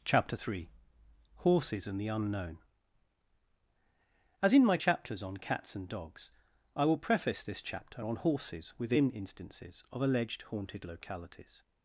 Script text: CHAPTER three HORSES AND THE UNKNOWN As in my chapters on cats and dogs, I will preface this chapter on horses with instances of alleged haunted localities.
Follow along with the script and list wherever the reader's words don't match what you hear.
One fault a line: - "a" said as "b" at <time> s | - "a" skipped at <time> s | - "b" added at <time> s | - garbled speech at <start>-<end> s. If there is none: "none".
- "with" said as "within" at 8.8 s